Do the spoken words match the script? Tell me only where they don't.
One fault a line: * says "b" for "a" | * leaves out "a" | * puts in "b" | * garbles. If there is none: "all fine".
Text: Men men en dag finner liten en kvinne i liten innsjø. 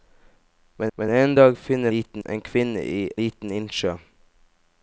all fine